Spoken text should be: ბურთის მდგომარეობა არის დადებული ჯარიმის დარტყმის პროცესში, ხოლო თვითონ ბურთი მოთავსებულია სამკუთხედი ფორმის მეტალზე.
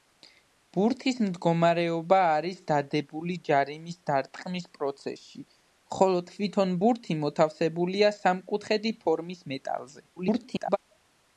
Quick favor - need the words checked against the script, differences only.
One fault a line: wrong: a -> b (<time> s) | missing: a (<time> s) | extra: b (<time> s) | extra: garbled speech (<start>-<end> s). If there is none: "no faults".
extra: garbled speech (10.2-10.8 s)